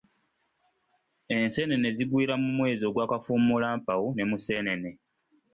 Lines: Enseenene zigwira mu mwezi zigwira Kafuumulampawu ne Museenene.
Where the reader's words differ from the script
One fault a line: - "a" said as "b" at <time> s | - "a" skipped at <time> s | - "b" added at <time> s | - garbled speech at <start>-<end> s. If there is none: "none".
- "zigwira" said as "ogwa" at 2.9 s